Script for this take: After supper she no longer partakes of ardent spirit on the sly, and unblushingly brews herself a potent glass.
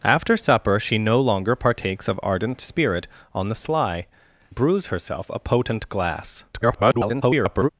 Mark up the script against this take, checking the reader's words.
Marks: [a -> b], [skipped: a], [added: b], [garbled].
After supper she no longer partakes of ardent spirit on the sly, [skipped: and unblushingly] brews herself a potent glass. [garbled]